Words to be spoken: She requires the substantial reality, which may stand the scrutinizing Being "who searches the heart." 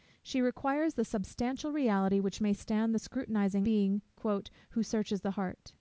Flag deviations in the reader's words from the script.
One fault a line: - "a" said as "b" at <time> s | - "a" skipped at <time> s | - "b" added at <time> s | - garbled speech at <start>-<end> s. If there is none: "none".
none